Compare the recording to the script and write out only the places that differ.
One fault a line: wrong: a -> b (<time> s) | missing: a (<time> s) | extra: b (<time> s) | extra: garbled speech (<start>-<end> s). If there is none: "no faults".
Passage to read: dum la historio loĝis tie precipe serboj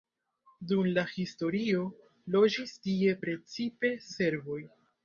no faults